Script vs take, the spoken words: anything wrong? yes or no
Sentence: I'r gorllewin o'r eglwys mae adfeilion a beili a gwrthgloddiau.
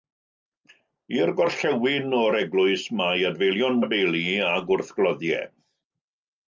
no